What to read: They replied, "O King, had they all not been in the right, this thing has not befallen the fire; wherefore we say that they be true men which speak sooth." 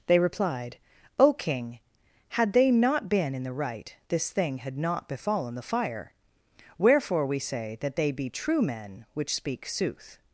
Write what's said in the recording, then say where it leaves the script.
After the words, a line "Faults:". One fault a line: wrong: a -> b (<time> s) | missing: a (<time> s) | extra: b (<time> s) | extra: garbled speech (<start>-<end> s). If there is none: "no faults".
They replied, "O King, had they not been in the right, this thing had not befallen the fire; wherefore we say that they be true men which speak sooth."
Faults:
missing: all (2.7 s)
wrong: has -> had (4.6 s)